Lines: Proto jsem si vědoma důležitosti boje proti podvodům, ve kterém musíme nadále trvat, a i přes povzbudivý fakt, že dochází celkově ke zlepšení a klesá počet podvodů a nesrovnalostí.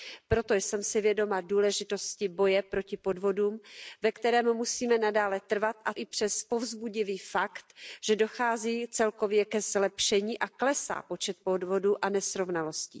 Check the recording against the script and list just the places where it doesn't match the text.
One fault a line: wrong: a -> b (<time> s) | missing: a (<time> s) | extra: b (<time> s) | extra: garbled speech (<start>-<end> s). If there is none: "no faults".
no faults